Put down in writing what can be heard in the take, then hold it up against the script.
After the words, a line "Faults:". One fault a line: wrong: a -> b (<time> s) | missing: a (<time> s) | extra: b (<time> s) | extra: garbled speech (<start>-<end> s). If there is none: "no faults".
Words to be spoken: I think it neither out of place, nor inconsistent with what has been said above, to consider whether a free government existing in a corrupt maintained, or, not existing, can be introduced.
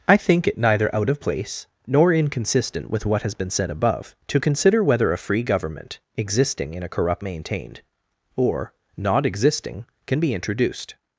I think it neither out of place, nor inconsistent with what has been said above, to consider whether a free government existing in a corrupt maintained, or, not existing, can be introduced.
Faults:
no faults